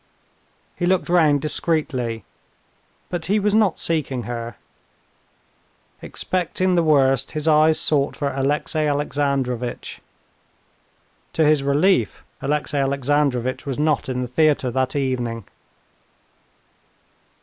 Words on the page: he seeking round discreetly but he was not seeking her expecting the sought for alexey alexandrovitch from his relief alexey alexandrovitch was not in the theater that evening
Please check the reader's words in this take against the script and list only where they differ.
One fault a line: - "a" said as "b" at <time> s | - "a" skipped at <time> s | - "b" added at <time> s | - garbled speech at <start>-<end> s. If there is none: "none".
- "seeking" said as "looked" at 0.9 s
- "worst his eyes" added at 6.8 s
- "from" said as "to" at 11.3 s